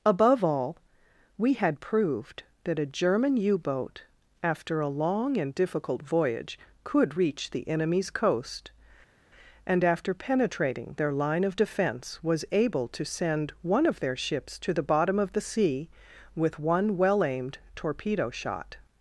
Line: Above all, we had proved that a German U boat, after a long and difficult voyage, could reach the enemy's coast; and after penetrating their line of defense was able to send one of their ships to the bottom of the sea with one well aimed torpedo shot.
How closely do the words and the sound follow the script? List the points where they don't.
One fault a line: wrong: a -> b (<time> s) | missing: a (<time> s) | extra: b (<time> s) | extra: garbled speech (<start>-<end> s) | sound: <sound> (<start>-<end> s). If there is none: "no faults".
no faults